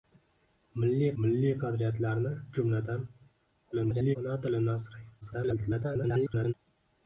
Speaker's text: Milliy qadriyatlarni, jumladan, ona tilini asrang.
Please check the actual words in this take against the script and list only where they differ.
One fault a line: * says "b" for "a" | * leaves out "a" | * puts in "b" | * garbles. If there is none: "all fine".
* puts in "milliy"
* garbles
* garbles